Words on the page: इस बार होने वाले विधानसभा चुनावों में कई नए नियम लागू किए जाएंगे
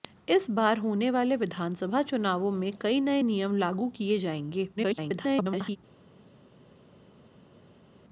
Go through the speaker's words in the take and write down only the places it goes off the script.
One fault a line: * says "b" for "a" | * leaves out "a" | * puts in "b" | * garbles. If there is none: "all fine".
* garbles